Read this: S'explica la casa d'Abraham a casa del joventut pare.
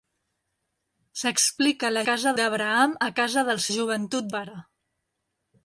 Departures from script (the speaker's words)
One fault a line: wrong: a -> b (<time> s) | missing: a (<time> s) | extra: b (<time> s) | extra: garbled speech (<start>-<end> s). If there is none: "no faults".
no faults